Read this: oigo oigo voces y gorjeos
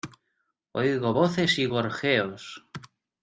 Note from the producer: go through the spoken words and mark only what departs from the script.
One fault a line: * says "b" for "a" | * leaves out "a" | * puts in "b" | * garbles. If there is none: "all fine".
* leaves out "oigo"